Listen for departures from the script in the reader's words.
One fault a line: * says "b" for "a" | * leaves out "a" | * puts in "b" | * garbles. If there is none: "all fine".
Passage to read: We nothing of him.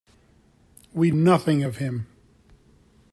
all fine